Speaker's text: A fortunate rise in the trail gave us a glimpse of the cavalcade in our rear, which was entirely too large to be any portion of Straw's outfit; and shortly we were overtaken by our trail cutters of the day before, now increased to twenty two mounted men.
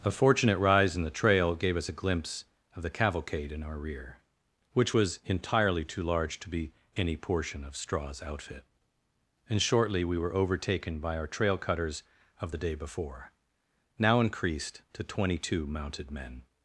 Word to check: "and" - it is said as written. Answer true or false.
true